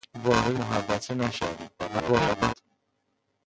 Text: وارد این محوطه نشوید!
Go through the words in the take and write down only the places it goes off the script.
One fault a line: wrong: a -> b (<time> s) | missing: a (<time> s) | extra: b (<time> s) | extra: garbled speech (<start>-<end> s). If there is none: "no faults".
missing: این (0.6 s)
extra: garbled speech (1.8-2.5 s)